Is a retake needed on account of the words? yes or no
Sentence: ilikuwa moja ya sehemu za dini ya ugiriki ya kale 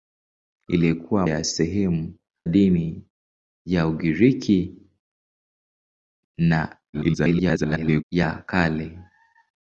yes